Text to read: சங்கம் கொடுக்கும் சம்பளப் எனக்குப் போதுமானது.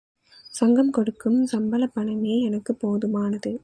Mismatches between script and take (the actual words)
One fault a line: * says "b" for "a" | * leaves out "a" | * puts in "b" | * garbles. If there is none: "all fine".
* puts in "பணமே"